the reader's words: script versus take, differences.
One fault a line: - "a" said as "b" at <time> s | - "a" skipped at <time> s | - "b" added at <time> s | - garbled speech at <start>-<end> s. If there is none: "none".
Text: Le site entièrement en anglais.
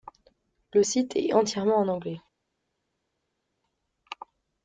- "est" added at 1.2 s